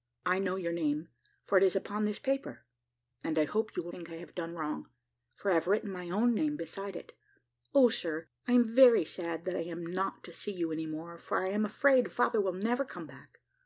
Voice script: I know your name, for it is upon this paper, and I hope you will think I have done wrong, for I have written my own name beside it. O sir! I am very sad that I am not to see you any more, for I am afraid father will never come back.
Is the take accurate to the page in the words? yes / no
yes